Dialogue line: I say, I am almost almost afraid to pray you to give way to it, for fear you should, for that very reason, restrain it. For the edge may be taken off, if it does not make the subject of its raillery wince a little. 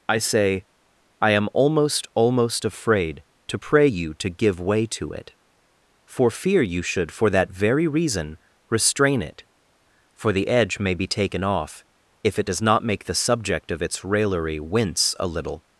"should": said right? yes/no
yes